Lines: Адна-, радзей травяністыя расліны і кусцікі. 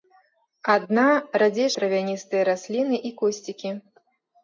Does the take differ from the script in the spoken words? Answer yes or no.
no